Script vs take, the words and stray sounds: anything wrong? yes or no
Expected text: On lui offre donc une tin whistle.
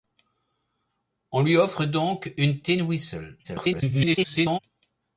yes